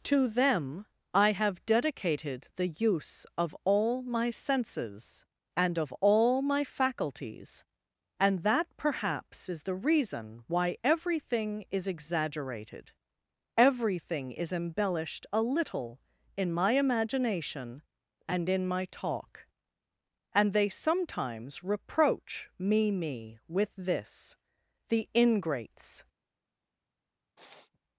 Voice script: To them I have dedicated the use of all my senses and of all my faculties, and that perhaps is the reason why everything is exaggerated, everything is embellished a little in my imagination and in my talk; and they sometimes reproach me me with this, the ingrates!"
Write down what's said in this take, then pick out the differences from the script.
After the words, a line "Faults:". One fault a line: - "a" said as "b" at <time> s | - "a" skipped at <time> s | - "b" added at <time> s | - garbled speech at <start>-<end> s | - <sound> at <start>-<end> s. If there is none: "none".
To them I have dedicated the use of all my senses and of all my faculties, and that perhaps is the reason why everything is exaggerated, everything is embellished a little in my imagination and in my talk; and they sometimes reproach me me with this, the ingrates!"
Faults:
- sniff at 27.4-27.8 s